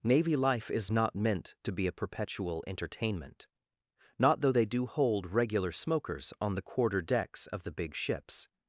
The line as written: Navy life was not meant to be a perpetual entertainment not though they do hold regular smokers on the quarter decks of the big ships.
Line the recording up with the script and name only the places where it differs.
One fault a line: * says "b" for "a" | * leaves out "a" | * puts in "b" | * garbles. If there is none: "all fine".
* says "is" for "was"